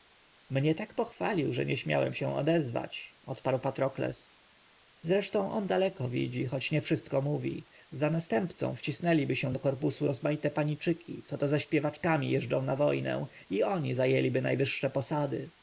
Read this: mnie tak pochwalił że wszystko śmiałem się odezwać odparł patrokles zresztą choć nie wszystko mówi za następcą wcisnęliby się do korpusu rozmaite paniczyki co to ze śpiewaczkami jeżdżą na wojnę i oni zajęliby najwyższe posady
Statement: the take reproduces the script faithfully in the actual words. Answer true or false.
false